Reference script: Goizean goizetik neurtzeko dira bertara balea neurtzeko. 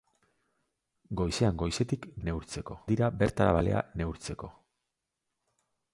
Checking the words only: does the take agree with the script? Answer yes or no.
yes